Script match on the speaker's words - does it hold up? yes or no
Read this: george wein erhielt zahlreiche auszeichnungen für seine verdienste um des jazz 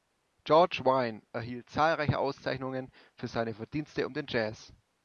no